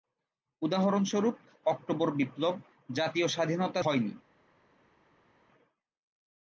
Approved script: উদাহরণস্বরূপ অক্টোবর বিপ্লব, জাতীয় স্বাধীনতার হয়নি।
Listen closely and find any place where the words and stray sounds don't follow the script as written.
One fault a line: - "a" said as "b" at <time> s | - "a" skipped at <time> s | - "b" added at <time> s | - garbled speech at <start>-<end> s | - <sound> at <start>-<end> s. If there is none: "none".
none